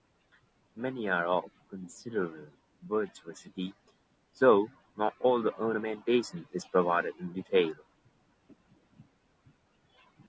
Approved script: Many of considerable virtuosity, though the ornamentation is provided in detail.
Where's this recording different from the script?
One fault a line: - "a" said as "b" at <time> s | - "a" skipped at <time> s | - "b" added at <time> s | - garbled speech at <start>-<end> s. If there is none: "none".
- "are" added at 1.1 s
- "not all" added at 5.0 s